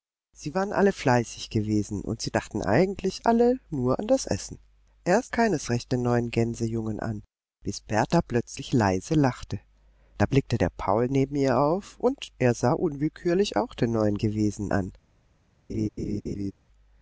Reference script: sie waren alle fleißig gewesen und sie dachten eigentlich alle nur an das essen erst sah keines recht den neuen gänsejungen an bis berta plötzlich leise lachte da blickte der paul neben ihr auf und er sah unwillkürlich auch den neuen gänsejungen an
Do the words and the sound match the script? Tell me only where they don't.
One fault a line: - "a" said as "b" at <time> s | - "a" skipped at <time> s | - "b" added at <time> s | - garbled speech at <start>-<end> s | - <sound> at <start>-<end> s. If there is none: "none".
- "sah" skipped at 5.3 s
- "gänsejungen" said as "gewesen" at 14.2 s
- laugh at 15.7-16.5 s